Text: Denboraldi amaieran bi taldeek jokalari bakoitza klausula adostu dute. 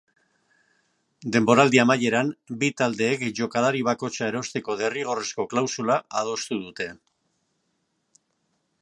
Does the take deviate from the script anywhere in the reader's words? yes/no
yes